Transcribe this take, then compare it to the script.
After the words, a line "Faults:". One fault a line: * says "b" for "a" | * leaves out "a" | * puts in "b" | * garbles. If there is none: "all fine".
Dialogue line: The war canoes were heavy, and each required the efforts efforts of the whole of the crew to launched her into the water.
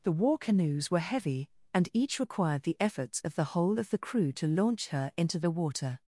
The war canoes were heavy, and each required the efforts of the whole of the crew to launch her into the water.
Faults:
* leaves out "efforts"
* says "launch" for "launched"